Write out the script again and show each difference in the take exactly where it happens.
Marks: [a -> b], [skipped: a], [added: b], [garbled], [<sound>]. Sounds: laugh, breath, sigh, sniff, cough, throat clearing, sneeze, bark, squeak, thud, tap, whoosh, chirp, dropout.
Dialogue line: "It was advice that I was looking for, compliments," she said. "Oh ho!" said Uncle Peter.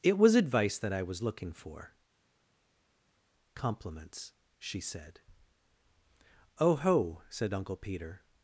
"It was advice that I was looking for, compliments," she said. "Oh ho!" said Uncle Peter.